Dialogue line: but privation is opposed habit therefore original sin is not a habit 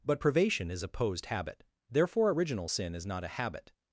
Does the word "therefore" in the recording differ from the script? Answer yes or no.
no